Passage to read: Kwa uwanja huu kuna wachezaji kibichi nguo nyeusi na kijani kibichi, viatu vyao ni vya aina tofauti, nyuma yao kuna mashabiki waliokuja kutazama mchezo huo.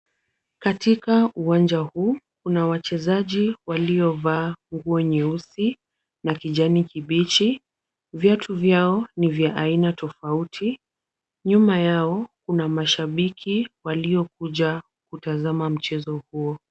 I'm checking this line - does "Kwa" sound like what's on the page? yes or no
no